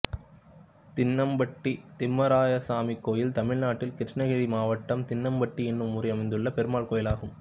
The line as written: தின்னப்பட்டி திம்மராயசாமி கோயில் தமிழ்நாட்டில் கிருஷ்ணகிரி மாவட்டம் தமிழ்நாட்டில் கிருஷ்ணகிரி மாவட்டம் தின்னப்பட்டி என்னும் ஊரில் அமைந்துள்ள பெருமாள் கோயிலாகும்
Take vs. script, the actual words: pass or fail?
fail